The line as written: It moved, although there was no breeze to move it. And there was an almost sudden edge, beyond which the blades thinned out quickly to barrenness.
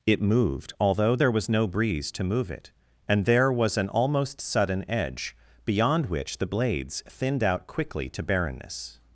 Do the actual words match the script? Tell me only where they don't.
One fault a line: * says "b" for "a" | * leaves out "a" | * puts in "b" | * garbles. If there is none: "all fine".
all fine